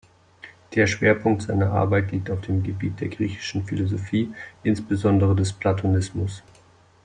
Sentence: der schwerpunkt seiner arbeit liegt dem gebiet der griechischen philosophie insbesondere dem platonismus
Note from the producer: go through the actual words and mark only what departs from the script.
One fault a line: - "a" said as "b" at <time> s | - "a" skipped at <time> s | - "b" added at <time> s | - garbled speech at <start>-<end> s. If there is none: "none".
- "auf" added at 2.3 s
- "dem" said as "des" at 5.4 s